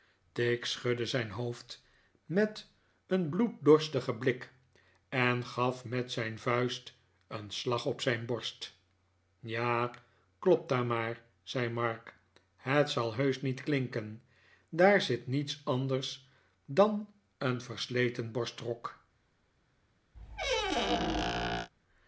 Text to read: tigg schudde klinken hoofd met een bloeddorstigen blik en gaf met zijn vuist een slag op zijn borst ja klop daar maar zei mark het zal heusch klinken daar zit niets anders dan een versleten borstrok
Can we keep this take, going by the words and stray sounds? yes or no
no